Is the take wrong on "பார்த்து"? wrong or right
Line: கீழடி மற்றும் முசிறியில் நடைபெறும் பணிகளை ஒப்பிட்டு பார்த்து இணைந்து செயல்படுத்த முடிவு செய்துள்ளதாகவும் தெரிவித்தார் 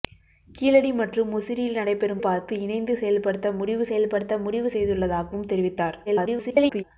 wrong